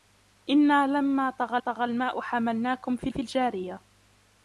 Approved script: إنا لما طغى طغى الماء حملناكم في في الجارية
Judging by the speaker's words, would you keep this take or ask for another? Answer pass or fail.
pass